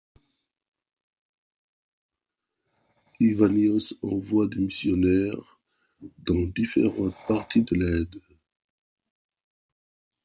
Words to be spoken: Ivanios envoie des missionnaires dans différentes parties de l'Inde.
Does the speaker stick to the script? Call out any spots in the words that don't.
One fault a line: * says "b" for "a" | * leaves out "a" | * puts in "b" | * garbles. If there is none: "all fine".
all fine